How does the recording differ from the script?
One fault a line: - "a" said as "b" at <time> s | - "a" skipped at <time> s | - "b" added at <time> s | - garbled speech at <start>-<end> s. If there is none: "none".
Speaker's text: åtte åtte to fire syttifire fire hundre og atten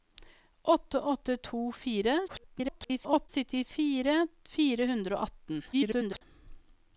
- garbled speech at 2.3-3.3 s
- garbled speech at 5.7-6.2 s